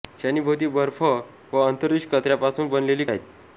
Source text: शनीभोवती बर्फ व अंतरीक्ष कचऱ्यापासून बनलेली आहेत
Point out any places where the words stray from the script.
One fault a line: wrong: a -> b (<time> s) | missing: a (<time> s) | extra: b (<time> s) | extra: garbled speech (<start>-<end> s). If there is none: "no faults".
no faults